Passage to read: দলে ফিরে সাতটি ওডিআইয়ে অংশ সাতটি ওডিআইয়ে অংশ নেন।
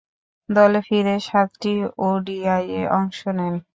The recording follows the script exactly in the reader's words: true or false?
false